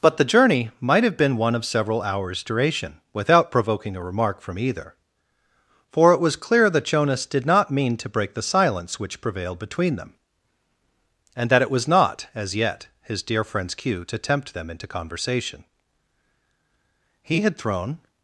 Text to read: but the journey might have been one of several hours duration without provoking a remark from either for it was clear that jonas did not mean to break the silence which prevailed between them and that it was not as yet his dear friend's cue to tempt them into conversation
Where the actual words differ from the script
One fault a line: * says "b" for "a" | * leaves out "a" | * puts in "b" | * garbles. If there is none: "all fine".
* puts in "he had thrown"